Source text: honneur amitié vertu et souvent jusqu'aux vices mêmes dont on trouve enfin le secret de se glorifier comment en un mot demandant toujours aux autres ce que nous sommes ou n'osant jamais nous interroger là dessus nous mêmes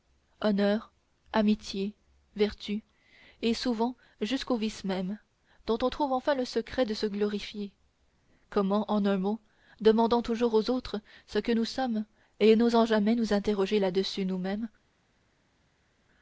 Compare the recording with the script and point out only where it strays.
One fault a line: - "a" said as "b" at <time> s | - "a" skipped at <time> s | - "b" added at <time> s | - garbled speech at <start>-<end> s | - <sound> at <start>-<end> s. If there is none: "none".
- "ou" said as "et" at 12.4 s